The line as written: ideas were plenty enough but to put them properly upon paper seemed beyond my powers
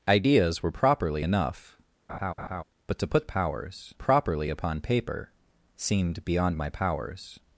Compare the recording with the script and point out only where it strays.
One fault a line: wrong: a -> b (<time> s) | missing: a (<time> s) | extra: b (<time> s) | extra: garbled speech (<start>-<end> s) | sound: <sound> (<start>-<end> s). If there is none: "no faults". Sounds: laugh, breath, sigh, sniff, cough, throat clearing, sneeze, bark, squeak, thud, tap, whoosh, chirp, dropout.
wrong: plenty -> properly (0.7 s)
sound: laugh (2.1-2.6 s)
wrong: them -> powers (3.2 s)